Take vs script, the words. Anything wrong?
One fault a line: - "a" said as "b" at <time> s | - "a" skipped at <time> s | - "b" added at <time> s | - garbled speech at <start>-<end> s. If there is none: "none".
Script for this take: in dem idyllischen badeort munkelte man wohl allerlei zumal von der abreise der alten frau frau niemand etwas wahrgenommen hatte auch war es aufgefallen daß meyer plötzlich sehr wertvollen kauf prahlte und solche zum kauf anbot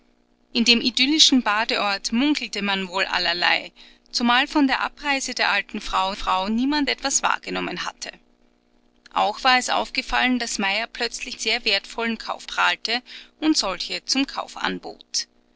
none